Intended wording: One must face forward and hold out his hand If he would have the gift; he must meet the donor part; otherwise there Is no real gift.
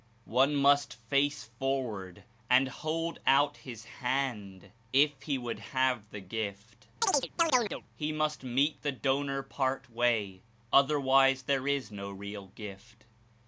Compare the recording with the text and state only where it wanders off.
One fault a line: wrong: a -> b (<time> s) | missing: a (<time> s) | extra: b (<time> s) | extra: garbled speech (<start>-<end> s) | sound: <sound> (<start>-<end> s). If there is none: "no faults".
sound: chirp (7.0-7.8 s)
extra: way (9.9 s)